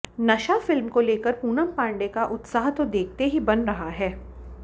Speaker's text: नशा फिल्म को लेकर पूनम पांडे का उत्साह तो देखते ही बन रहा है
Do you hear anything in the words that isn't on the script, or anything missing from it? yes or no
no